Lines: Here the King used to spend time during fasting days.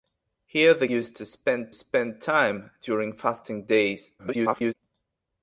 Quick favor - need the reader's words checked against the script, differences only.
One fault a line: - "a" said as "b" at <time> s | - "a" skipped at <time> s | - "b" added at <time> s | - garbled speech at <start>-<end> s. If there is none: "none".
- "King" skipped at 0.9 s
- "spend" added at 1.7 s
- garbled speech at 4.2-4.7 s